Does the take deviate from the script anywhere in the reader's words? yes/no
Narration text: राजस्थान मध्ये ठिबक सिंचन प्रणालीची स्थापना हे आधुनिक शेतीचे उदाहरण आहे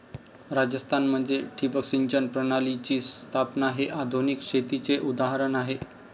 no